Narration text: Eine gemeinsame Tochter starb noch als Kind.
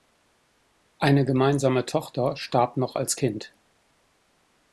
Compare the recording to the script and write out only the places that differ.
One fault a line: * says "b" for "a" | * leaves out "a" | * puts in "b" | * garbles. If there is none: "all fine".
all fine